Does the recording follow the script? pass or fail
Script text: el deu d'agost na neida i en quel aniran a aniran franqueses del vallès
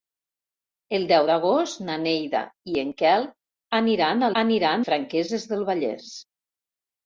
pass